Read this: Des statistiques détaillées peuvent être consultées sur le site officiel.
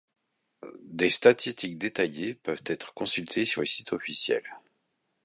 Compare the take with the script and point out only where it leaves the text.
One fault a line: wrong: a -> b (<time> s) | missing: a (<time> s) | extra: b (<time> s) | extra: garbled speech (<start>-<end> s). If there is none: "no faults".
no faults